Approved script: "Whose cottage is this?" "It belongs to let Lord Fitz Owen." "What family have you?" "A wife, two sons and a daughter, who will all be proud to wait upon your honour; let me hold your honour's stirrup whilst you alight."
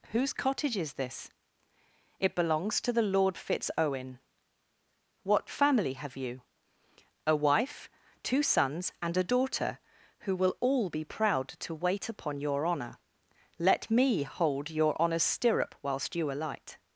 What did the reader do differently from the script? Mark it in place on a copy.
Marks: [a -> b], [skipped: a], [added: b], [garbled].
"Whose cottage is this?" "It belongs to [let -> the] Lord Fitz Owen." "What family have you?" "A wife, two sons and a daughter, who will all be proud to wait upon your honour; let me hold your honour's stirrup whilst you alight."